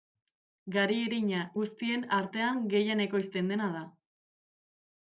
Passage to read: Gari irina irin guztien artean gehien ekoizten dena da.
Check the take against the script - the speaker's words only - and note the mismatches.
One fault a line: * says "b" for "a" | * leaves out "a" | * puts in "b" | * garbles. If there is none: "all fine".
* leaves out "irin"